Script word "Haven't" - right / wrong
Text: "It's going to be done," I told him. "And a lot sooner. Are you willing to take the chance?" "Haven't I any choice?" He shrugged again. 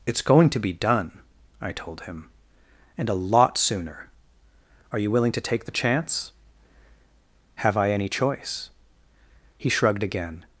wrong